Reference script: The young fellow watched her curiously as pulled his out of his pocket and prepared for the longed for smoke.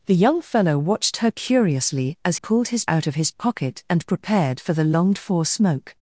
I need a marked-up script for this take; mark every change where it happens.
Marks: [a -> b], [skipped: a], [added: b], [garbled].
The young fellow watched her curiously as pulled his out of his pocket and prepared for the longed for smoke.